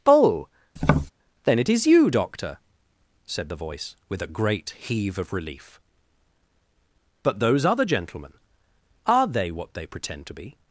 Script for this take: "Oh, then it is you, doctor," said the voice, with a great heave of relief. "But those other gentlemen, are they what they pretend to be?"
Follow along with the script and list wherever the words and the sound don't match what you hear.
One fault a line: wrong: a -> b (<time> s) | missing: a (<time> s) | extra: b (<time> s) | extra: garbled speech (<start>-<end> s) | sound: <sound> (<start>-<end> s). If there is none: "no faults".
sound: tap (0.8-1.1 s)